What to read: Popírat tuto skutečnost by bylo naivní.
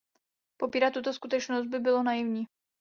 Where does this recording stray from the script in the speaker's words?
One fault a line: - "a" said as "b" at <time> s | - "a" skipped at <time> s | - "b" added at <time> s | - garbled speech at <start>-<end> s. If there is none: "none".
none